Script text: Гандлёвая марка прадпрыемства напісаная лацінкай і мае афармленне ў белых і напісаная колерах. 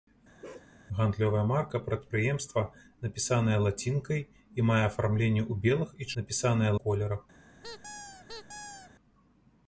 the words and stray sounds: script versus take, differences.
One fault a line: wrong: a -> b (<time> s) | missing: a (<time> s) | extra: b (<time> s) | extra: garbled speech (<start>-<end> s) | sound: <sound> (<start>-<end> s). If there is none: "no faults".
sound: bark (0.4-0.7 s)
sound: squeak (7.6-8.9 s)